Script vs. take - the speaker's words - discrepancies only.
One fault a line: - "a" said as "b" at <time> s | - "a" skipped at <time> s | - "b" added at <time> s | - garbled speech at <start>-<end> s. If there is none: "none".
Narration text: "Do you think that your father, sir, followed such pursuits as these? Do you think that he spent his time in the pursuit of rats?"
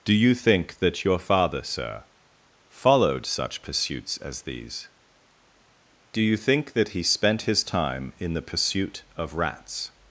none